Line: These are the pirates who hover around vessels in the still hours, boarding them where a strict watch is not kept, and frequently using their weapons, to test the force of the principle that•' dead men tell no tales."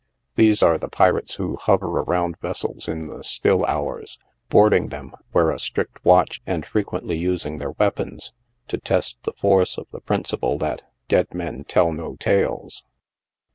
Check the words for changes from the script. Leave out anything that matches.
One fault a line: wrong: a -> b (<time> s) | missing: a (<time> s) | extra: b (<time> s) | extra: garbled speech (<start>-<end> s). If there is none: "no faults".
missing: is not kept (6.4 s)